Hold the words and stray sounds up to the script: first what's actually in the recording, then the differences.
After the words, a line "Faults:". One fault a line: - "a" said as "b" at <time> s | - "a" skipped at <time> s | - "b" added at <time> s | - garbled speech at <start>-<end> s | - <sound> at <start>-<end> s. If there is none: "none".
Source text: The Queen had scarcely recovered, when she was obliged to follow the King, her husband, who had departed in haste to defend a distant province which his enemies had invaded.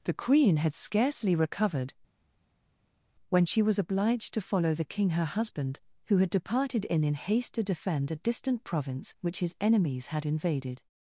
The Queen had scarcely recovered, when she was obliged to follow the King, her husband, who had departed in in haste to defend a distant province which his enemies had invaded.
Faults:
- "in" added at 7.0 s